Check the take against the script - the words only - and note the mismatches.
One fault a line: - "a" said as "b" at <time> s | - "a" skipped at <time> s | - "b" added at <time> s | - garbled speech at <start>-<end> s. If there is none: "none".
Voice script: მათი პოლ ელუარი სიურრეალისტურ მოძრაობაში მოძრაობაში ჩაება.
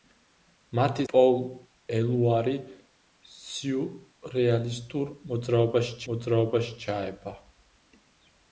none